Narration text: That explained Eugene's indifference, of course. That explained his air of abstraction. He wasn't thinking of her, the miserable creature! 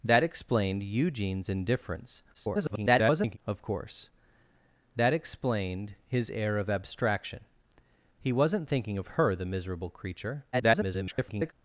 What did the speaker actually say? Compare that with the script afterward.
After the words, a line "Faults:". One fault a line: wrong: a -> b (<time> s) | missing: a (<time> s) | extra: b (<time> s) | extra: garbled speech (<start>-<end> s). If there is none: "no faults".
That explained Eugene's indifference, [garbled] of course. That explained his air of abstraction. He wasn't thinking of her, the miserable creature! [garbled]
Faults:
extra: garbled speech (2.3-3.4 s)
extra: garbled speech (10.5-11.5 s)